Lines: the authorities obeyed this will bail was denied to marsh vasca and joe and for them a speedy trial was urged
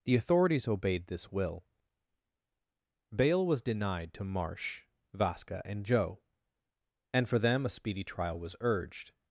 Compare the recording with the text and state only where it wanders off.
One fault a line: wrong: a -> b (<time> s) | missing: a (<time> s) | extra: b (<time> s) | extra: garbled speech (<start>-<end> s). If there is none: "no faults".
no faults